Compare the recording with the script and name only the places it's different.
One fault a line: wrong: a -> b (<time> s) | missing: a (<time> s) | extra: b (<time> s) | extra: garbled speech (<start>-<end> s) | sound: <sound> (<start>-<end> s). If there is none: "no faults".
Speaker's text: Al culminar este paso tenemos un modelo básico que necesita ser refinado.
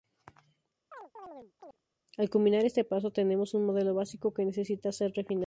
sound: chirp (0.9-1.8 s)